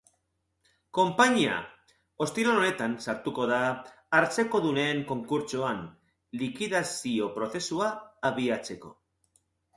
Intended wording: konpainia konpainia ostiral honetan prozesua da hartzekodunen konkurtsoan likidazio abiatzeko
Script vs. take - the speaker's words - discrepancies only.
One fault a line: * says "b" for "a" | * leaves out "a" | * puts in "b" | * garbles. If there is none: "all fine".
* leaves out "konpainia"
* says "sartuko" for "prozesua"
* puts in "prozesua"